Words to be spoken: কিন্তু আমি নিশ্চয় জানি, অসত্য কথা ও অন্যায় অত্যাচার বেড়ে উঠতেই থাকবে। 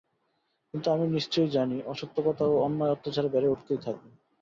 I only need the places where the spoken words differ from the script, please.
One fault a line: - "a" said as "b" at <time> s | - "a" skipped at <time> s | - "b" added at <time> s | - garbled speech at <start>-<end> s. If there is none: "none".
none